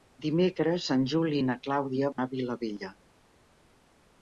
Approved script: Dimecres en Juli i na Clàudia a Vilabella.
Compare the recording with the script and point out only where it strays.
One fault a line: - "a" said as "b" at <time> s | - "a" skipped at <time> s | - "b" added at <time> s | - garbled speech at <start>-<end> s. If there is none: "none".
none